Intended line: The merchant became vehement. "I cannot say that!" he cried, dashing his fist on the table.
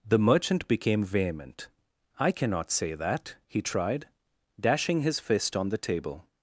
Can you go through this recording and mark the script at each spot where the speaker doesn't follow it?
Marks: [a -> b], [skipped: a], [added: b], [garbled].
The merchant became vehement. "I cannot say that!" he [cried, -> tried] dashing his fist on the table.